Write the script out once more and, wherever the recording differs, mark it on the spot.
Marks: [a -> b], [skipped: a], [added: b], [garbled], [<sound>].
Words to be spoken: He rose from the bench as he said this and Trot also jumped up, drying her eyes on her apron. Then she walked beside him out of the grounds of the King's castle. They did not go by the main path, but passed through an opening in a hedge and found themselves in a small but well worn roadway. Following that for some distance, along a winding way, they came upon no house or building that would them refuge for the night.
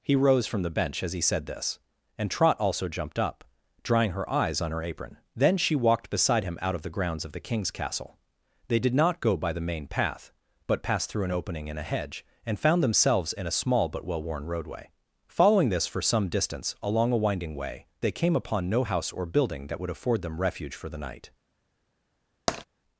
He rose from the bench as he said this and Trot also jumped up, drying her eyes on her apron. Then she walked beside him out of the grounds of the King's castle. They did not go by the main path, but passed through an opening in a hedge and found themselves in a small but well worn roadway. Following [that -> this] for some distance, along a winding way, they came upon no house or building that would [added: afford] them refuge for the night. [tap]